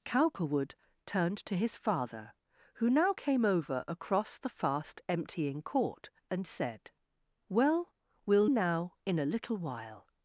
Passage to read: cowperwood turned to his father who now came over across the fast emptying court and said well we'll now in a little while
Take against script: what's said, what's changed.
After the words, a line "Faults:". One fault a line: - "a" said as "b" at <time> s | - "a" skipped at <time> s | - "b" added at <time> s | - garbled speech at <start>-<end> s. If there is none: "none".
cowperwood turned to his father who now came over across the fast emptying court and said well we'll now in a little while
Faults:
none